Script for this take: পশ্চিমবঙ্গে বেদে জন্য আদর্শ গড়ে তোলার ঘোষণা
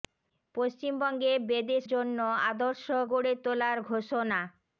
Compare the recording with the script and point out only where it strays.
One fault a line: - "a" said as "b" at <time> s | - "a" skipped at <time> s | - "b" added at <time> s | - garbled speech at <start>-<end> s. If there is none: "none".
none